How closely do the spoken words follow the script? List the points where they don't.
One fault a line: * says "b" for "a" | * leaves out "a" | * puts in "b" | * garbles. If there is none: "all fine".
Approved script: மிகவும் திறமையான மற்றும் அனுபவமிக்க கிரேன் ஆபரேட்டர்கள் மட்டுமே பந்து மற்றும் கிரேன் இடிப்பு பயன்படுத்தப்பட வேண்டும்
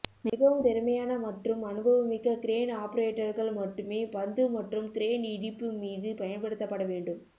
* puts in "மீது"